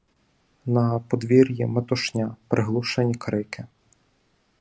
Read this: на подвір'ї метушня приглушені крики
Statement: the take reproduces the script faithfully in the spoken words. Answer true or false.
true